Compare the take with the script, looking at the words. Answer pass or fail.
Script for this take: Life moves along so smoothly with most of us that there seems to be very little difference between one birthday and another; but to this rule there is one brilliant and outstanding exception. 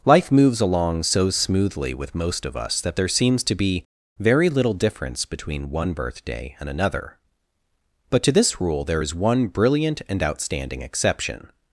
pass